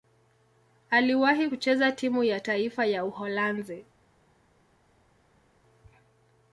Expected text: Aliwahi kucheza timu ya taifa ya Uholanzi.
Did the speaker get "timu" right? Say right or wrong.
right